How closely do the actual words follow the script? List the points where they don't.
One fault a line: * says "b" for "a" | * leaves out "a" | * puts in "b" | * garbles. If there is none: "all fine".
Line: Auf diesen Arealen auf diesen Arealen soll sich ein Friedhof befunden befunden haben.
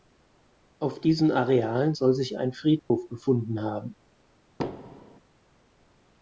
* leaves out "auf diesen Arealen"
* leaves out "befunden"